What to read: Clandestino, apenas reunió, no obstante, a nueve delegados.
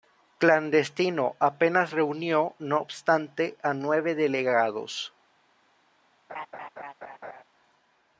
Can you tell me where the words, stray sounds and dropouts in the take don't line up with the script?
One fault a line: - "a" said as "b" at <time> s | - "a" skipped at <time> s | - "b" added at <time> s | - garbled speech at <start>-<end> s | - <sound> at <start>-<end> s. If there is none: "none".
- laugh at 6.3-7.4 s